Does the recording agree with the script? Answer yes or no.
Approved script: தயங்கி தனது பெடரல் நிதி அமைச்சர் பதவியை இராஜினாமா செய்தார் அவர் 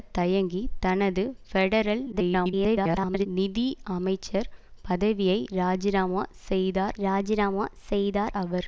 no